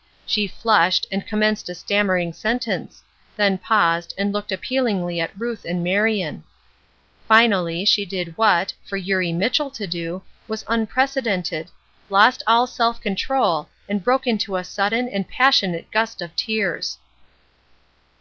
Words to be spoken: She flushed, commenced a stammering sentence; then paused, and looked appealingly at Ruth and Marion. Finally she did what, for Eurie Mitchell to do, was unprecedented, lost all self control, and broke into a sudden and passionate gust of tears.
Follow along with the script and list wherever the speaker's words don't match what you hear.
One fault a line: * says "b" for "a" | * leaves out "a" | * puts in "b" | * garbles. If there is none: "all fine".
* puts in "and"